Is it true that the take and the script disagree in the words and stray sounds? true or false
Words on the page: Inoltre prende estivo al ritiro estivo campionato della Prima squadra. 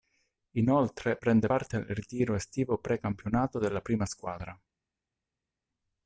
true